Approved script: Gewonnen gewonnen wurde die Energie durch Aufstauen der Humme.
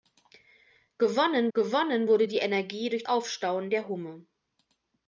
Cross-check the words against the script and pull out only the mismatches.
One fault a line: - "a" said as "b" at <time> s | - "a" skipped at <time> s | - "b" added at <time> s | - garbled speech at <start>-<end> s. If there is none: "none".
none